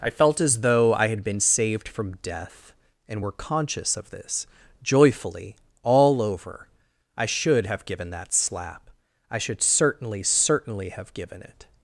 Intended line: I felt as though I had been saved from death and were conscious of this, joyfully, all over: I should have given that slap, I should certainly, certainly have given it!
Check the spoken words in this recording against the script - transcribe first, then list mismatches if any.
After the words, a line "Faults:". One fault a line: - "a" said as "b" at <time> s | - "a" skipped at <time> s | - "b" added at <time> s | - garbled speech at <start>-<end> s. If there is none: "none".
I felt as though I had been saved from death and were conscious of this, joyfully, all over: I should have given that slap, I should certainly, certainly have given it!
Faults:
none